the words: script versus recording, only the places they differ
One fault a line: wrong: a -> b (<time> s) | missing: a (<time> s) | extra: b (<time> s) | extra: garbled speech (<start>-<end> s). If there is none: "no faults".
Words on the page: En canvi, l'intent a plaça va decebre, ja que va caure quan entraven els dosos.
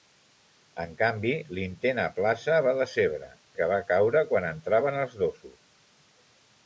missing: ja (3.3 s)